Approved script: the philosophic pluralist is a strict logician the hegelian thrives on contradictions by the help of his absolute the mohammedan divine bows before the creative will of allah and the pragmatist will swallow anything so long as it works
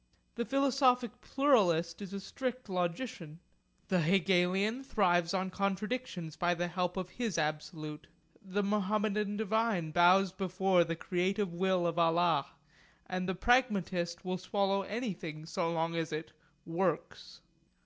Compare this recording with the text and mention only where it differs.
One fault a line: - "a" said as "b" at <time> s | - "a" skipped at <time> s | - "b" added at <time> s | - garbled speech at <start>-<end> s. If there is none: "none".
none